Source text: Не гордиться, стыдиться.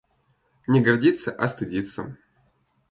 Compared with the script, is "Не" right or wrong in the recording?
right